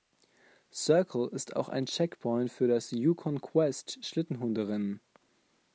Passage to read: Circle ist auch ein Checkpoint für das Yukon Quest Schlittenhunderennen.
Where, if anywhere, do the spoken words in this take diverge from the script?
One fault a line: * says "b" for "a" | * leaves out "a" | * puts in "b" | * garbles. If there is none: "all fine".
all fine